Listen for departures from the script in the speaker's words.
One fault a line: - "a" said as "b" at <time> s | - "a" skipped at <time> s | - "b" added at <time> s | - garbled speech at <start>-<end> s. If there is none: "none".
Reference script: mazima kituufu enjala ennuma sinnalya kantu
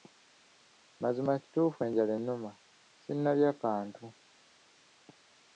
none